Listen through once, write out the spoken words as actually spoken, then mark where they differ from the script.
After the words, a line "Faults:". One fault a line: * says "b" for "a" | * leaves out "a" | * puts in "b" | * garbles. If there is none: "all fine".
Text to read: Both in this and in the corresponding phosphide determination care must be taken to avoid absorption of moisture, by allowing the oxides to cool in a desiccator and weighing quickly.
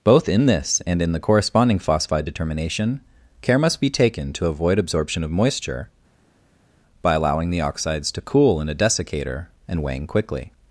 Both in this and in the corresponding phosphide determination care must be taken to avoid absorption of moisture, by allowing the oxides to cool in a desiccator and weighing quickly.
Faults:
all fine